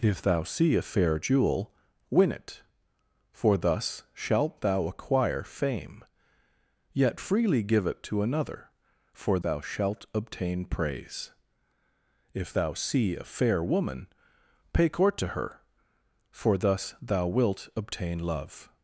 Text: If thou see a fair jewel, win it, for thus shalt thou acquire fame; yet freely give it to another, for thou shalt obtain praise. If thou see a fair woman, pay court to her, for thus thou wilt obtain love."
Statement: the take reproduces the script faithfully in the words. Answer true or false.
true